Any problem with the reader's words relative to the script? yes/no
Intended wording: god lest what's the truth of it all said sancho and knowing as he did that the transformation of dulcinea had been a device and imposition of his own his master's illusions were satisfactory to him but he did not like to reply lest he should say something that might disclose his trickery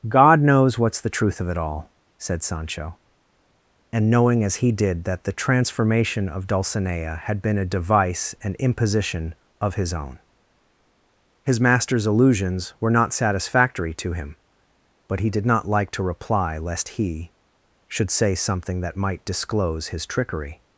yes